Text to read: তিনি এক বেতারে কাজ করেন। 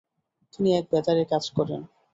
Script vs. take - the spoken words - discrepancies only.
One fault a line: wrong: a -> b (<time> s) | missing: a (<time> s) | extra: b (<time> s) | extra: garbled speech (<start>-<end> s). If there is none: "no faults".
no faults